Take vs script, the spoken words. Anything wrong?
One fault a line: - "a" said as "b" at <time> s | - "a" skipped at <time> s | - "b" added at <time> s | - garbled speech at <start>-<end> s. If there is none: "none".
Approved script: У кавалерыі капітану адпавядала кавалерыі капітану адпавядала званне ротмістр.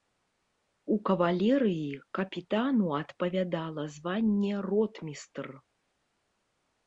- "кавалерыі капітану адпавядала" skipped at 3.8 s